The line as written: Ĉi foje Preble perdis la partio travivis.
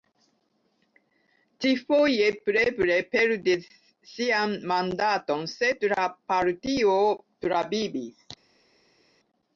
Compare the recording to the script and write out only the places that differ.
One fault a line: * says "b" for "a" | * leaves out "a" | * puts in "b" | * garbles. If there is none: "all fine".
* puts in "sian mandaton sed"